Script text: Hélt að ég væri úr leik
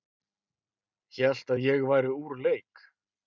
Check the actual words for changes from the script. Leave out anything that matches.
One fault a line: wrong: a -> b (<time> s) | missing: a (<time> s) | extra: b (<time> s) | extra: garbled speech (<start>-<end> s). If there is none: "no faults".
no faults